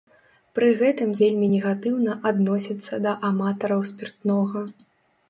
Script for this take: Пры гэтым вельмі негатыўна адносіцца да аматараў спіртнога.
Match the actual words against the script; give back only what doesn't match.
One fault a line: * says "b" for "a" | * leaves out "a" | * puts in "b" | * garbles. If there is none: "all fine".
all fine